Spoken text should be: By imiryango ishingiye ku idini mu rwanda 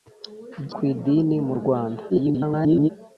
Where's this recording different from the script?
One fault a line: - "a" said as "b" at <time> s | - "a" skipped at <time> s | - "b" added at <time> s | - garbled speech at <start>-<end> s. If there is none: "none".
- "imiryango ishingiye" skipped at 0.7 s
- garbled speech at 2.1-2.9 s